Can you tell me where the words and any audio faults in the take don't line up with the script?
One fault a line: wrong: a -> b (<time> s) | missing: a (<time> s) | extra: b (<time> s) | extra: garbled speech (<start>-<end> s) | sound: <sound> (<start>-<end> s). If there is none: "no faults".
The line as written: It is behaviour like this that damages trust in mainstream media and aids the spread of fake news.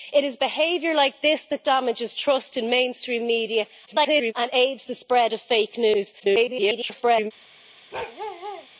extra: garbled speech (3.9-4.3 s)
extra: garbled speech (6.2-7.3 s)
sound: bark (7.9-8.7 s)